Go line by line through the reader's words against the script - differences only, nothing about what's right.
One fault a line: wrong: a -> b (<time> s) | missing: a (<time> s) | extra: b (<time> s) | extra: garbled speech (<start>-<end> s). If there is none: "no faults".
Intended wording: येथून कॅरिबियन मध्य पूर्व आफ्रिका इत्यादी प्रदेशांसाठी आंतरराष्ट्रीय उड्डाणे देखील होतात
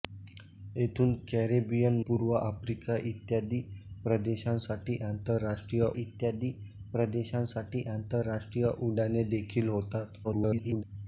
missing: मध्य (2.0 s)
extra: इत्यादी प्रदेशांसाठी आंतरराष्ट्रीय (6.0 s)
extra: garbled speech (10.2-10.8 s)